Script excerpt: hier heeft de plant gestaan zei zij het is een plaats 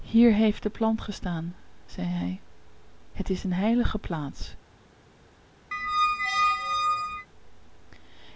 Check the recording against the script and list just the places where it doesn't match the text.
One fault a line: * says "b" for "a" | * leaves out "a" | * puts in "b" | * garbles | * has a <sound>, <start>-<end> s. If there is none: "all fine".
* says "hij" for "zij"
* puts in "heilige"
* has a squeak, 5.7-7.3 s